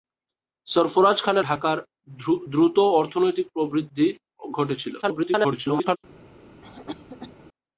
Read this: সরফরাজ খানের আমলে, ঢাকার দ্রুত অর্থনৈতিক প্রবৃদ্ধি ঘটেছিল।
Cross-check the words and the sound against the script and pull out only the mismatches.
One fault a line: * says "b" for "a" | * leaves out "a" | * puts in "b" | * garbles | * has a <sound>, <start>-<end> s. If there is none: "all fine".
* leaves out "আমলে"
* garbles
* has a cough, 6.6-7.4 s